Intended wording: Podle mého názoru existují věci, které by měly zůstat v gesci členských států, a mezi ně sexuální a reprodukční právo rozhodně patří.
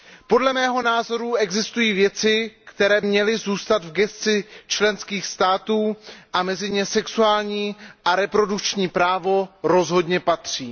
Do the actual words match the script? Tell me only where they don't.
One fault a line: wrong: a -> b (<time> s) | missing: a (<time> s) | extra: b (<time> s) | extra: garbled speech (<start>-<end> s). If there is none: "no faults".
missing: by (3.0 s)